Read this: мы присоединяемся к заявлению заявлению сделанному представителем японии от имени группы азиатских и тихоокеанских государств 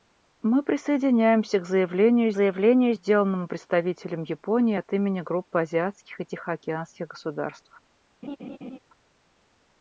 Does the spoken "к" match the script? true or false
true